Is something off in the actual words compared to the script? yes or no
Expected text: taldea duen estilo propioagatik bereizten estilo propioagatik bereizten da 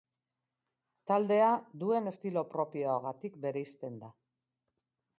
yes